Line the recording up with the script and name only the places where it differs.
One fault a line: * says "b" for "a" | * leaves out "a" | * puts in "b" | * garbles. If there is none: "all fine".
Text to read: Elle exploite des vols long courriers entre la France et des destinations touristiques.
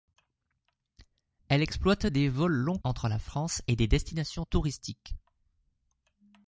* leaves out "courriers"